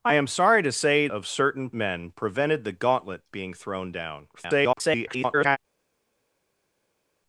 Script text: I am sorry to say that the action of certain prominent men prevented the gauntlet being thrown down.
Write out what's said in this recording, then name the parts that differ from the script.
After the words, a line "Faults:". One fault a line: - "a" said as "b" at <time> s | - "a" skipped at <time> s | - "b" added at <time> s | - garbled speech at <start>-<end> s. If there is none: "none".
I am sorry to say of certain men prevented the gauntlet being thrown down. [garbled]
Faults:
- "that the action" skipped at 1.1 s
- "prominent" skipped at 1.7 s
- garbled speech at 4.3-5.6 s